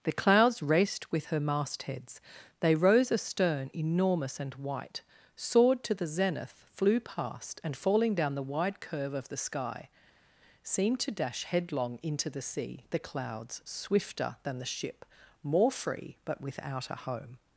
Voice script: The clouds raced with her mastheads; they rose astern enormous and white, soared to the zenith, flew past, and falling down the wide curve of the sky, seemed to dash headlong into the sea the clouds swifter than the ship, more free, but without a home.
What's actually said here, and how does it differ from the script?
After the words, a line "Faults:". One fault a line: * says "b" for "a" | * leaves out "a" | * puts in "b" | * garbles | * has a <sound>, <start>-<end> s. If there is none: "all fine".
The clouds raced with her mastheads; they rose astern enormous and white, soared to the zenith, flew past, and falling down the wide curve of the sky, seemed to dash headlong into the sea the clouds swifter than the ship, more free, but without a home.
Faults:
all fine